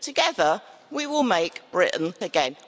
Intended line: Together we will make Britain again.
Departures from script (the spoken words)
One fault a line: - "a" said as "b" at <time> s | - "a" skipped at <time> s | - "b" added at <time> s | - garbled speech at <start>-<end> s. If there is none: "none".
none